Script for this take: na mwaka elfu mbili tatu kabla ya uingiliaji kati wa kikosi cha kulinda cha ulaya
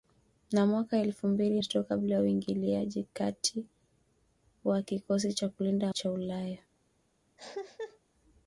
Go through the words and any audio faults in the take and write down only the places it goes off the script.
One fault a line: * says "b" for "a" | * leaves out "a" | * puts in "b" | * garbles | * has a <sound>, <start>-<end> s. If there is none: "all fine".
* has a cough, 7.4-8.0 s